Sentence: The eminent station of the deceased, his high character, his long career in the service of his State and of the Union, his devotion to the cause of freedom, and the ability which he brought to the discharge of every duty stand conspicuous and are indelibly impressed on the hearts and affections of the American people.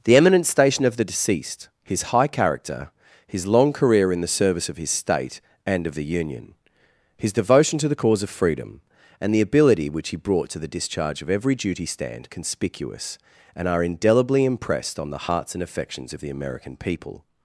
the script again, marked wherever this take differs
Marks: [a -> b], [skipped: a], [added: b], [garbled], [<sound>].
The eminent station of the deceased, his high character, his long career in the service of his State and of the Union, his devotion to the cause of freedom, and the ability which he brought to the discharge of every duty stand conspicuous and are indelibly impressed on the hearts and affections of the American people.